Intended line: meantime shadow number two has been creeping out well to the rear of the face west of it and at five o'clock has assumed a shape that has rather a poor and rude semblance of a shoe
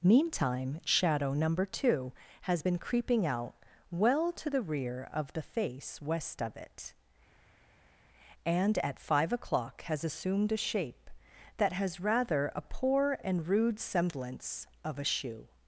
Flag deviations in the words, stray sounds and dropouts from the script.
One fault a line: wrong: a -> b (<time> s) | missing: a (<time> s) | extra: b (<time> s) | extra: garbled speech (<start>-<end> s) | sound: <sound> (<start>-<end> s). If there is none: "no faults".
no faults